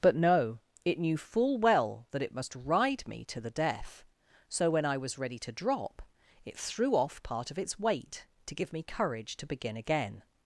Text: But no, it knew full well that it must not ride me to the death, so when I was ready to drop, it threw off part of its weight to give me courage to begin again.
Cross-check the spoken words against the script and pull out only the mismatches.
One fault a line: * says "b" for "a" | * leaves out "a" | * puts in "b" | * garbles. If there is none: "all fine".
* leaves out "not"